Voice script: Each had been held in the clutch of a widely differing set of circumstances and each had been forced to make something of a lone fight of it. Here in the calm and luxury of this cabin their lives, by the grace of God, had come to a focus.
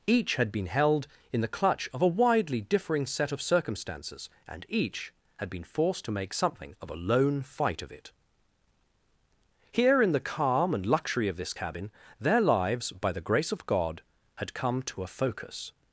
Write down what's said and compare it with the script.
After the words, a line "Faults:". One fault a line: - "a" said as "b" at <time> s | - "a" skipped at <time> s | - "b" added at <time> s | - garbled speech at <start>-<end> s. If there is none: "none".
Each had been held in the clutch of a widely differing set of circumstances and each had been forced to make something of a lone fight of it. Here in the calm and luxury of this cabin their lives, by the grace of God, had come to a focus.
Faults:
none